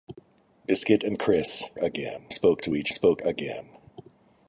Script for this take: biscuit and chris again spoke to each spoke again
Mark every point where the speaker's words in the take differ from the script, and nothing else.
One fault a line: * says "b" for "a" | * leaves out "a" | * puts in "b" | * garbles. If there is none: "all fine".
all fine